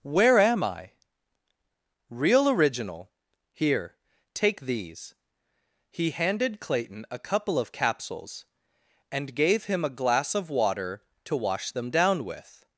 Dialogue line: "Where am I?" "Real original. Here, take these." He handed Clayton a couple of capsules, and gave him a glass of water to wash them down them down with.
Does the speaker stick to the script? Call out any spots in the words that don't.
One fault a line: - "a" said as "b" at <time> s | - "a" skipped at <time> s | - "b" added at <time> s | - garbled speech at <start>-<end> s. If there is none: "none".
- "them down" skipped at 12.2 s